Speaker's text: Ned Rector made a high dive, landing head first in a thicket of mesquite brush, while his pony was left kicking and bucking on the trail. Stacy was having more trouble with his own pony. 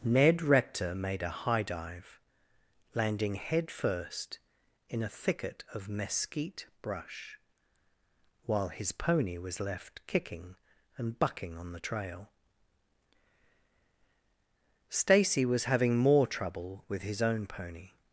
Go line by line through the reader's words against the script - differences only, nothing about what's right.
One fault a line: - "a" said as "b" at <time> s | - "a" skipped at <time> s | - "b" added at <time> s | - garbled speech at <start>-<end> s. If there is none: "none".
none